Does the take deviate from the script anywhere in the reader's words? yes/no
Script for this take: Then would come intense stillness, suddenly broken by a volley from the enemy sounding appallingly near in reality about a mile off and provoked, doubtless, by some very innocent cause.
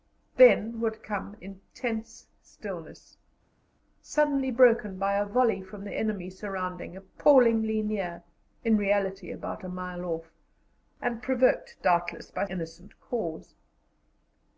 yes